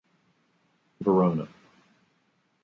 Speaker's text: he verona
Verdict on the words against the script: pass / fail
pass